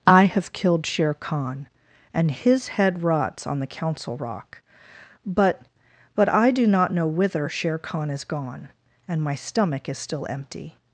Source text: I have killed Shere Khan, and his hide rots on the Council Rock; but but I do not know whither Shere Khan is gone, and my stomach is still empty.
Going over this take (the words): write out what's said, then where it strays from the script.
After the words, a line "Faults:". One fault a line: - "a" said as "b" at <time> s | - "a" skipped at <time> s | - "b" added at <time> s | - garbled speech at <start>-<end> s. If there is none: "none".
I have killed Shere Khan, and his head rots on the Council Rock; but but I do not know whither Shere Khan is gone, and my stomach is still empty.
Faults:
- "hide" said as "head" at 2.7 s